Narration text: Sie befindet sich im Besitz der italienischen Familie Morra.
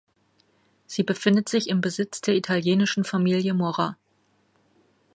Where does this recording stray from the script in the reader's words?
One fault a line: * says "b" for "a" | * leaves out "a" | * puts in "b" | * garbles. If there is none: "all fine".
all fine